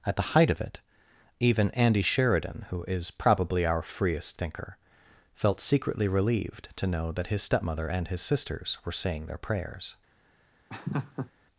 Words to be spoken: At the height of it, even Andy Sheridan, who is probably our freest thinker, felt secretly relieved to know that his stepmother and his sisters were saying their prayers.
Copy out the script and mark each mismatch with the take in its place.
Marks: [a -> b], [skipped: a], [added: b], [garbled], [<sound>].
At the height of it, even Andy Sheridan, who is probably our freest thinker, felt secretly relieved to know that his stepmother and his sisters were saying their prayers. [laugh]